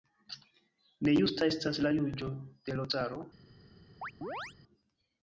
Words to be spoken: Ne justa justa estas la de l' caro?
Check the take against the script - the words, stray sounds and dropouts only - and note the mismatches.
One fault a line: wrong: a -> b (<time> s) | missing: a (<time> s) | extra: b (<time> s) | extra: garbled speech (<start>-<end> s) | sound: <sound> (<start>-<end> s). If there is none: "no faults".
missing: justa (1.5 s)
extra: juĝo (2.0 s)
sound: chirp (4.0-4.5 s)